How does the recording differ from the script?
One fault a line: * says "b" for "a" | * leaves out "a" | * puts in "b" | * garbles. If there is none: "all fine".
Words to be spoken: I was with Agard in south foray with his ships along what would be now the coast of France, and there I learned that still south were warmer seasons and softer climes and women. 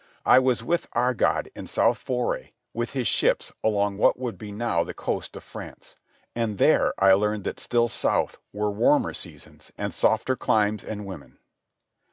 all fine